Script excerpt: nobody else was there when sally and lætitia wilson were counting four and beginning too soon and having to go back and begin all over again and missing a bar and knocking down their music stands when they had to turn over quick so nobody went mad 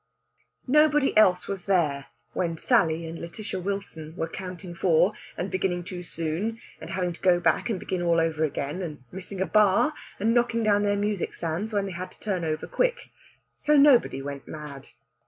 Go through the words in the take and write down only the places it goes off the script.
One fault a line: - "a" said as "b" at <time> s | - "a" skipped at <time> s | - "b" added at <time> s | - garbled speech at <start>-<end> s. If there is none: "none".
none